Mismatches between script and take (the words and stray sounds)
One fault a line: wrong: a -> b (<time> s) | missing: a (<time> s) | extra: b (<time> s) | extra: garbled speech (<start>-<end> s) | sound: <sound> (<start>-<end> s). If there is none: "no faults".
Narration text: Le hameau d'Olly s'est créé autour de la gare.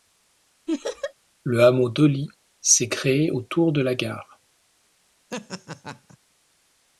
sound: laugh (0.7-1.1 s)
sound: laugh (5.3-6.2 s)